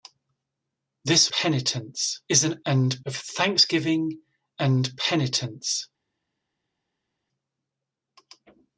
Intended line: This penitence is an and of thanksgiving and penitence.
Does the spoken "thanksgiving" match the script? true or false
true